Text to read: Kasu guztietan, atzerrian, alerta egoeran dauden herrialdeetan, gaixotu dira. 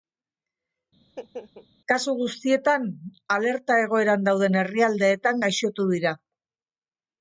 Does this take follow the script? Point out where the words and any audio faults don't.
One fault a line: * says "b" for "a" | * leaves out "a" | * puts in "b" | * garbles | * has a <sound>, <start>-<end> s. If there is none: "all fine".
* has a laugh, 1.0-1.7 s
* leaves out "atzerrian"